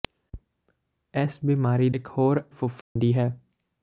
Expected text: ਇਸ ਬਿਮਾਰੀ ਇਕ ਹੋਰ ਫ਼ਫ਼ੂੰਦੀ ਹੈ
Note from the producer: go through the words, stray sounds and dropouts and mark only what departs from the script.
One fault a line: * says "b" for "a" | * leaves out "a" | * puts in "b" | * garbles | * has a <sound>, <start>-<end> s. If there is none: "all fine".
* has a dropout, 2.8-3.0 s